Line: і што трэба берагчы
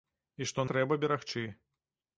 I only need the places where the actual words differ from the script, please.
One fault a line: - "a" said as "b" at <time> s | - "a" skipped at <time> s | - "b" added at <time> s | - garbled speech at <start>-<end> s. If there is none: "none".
none